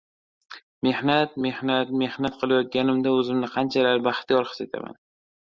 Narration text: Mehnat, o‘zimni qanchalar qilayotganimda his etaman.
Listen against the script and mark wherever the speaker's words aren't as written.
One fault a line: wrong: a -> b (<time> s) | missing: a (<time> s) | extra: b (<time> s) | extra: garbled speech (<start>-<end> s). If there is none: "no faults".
extra: mehnat Mehnat qilayotganimda (1.5 s)
wrong: qilayotganimda -> baxtiyor (4.1 s)